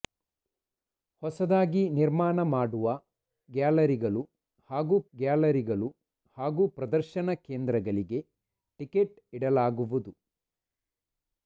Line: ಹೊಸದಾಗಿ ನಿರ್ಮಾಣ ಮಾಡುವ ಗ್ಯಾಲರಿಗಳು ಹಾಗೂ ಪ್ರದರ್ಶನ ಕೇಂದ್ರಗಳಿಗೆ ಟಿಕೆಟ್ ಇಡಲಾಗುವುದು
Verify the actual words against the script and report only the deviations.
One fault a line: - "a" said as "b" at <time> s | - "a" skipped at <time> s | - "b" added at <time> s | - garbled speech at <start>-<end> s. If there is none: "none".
- "ಗ್ಯಾಲರಿಗಳು ಹಾಗೂ" added at 5.1 s